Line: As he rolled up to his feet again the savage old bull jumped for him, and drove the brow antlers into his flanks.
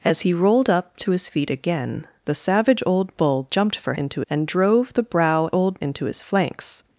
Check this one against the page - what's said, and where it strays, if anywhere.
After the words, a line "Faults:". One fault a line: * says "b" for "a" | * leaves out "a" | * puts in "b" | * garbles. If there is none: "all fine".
As he rolled up to his feet again the savage old bull jumped for into, and drove the brow old into his flanks.
Faults:
* says "into" for "him"
* says "old" for "antlers"